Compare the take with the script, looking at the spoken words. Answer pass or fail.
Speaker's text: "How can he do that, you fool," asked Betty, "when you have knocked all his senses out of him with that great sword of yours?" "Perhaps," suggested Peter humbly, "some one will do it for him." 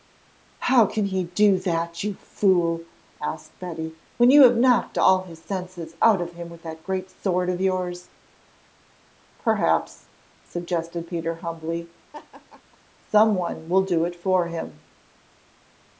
pass